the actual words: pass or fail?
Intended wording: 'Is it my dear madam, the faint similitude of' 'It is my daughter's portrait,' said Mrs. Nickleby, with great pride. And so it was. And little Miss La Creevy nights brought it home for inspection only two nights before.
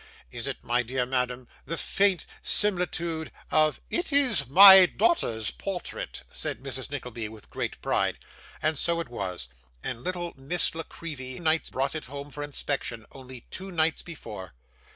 pass